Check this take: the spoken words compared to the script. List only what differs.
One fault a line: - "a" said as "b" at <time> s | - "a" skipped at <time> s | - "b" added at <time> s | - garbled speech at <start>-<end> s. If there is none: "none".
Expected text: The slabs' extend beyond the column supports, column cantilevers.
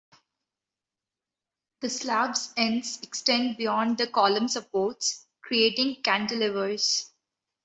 - "ends" added at 2.6 s
- "column" said as "creating" at 5.4 s